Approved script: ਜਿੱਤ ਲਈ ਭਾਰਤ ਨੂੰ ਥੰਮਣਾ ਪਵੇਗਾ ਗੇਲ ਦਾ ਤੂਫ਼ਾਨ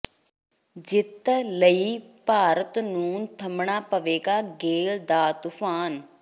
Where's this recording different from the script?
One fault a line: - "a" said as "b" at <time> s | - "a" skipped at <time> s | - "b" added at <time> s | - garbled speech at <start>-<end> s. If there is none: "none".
none